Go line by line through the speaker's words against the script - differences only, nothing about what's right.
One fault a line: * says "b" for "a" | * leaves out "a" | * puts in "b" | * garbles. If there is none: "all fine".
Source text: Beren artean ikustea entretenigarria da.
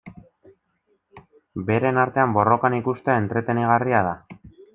* puts in "borrokan"